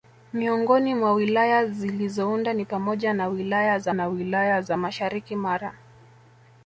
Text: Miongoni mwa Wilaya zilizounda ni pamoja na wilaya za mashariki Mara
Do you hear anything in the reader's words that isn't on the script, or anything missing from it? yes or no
yes